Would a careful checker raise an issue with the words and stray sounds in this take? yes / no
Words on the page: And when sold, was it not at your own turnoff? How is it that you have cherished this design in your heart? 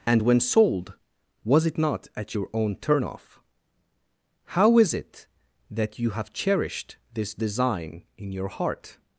no